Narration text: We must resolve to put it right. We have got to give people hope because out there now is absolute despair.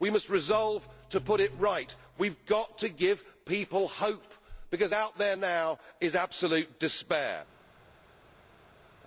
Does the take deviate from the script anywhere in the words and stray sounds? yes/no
no